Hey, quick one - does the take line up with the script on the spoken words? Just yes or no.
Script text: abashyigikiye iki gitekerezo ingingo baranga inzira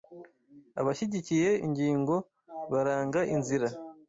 no